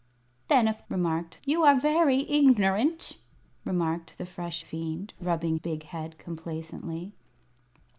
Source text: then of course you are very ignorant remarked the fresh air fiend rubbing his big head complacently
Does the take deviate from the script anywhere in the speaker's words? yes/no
yes